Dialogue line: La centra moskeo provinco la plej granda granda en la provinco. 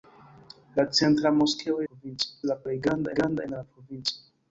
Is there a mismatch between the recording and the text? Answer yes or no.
no